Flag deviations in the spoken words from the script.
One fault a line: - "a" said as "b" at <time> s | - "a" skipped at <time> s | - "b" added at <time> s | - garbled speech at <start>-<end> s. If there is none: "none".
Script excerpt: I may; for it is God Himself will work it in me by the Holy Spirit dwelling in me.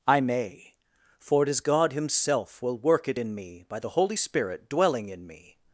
none